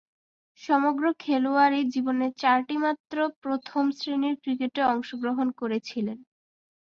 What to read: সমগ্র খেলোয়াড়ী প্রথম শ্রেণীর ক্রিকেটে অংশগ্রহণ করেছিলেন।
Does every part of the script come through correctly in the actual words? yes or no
no